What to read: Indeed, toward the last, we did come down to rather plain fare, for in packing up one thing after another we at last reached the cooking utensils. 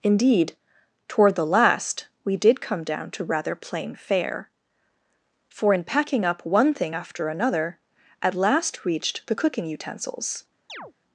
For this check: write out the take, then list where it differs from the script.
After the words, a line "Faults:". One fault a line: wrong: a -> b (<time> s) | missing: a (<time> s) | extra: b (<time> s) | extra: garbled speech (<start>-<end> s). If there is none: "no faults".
Indeed, toward the last, we did come down to rather plain fare, for in packing up one thing after another at last reached the cooking utensils.
Faults:
missing: we (7.8 s)